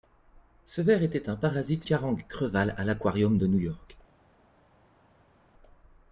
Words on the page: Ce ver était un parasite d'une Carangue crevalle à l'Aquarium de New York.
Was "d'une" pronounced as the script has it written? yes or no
no